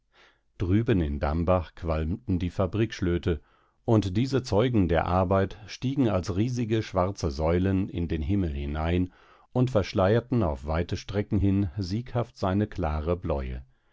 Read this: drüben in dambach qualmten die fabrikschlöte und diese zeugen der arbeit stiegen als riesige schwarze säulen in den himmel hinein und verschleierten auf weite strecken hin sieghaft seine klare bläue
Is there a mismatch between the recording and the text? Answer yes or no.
no